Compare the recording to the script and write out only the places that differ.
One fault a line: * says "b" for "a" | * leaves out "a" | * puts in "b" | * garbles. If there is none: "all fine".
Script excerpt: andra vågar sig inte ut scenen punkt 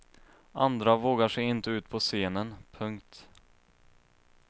* puts in "på"